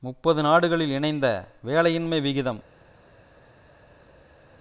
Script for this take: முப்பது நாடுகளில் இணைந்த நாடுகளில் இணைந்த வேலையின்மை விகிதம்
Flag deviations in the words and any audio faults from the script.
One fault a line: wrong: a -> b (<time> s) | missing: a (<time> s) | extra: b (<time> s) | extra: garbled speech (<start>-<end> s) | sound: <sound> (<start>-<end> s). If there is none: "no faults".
missing: நாடுகளில் இணைந்த (1.3 s)